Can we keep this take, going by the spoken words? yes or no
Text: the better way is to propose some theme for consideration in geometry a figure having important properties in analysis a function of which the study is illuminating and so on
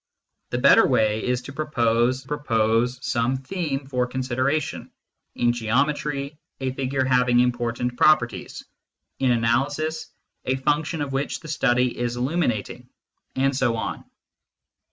no